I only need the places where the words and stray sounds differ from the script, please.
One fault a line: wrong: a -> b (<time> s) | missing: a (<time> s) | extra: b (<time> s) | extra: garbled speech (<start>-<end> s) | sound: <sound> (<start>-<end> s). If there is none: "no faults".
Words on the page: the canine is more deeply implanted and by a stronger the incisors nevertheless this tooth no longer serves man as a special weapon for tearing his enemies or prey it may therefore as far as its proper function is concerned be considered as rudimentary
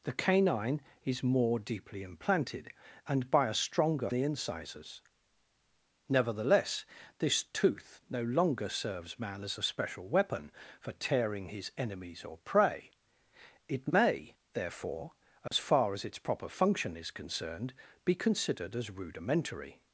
sound: dropout (15.5-15.5 s)